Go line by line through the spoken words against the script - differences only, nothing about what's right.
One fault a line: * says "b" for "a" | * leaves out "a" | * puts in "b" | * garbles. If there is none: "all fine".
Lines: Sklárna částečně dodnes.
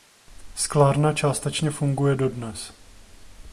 * puts in "funguje"